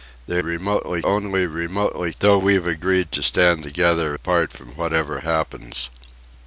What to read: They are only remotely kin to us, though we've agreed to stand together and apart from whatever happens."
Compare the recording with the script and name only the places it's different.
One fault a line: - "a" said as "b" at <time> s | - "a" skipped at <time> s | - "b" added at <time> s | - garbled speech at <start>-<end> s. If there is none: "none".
- "are" said as "remotely" at 0.4 s
- "kin to us" skipped at 2.1 s
- "and" skipped at 4.1 s